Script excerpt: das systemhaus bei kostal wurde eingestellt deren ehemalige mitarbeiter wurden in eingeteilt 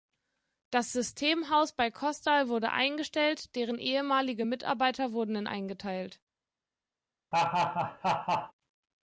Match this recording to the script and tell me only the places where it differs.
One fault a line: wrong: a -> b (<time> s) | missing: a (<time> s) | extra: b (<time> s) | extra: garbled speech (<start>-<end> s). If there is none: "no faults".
no faults